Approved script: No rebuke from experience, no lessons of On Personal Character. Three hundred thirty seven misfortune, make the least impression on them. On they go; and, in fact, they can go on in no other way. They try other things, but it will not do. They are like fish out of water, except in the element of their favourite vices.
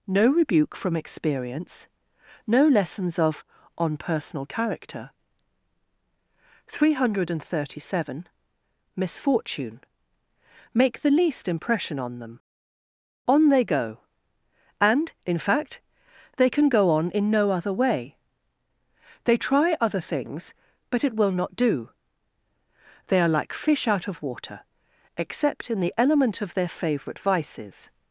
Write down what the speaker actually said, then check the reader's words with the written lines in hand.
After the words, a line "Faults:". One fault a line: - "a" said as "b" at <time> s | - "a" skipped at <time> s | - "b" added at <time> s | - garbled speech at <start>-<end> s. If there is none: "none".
No rebuke from experience, no lessons of On Personal Character. Three hundred thirty seven misfortune, make the least impression on them. On they go; and, in fact, they can go on in no other way. They try other things, but it will not do. They are like fish out of water, except in the element of their favourite vices.
Faults:
none